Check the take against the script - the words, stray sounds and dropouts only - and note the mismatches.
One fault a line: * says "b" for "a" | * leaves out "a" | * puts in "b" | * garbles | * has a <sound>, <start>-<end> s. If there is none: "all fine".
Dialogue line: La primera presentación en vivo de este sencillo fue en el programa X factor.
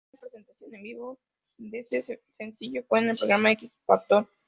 all fine